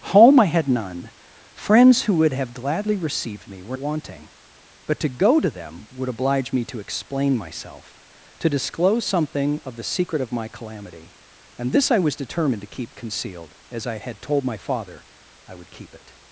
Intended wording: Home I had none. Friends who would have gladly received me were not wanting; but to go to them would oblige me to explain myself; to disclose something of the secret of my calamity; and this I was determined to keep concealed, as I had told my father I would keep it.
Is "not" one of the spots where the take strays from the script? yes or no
yes